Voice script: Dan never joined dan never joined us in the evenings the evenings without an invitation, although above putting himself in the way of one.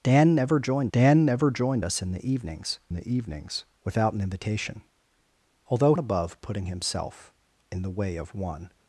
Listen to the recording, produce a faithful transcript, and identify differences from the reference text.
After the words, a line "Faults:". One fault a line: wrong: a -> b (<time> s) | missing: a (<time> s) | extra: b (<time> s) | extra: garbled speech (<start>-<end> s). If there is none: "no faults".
Dan never joined dan never joined us in the evenings the evenings without an invitation, although above putting himself in the way of one.
Faults:
no faults